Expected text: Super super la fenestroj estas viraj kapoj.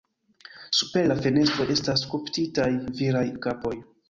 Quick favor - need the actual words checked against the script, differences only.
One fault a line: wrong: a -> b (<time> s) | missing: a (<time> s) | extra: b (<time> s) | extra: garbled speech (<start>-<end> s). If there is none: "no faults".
missing: super (1.0 s)
extra: skulptitaj (2.1 s)